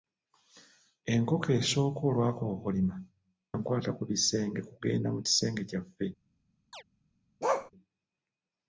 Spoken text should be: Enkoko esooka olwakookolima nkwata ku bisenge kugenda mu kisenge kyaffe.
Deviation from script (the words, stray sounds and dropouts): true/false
true